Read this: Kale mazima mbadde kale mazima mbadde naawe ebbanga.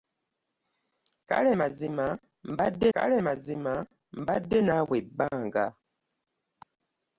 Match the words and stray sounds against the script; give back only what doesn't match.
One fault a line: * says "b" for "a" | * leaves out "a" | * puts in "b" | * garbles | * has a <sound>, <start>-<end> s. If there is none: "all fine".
all fine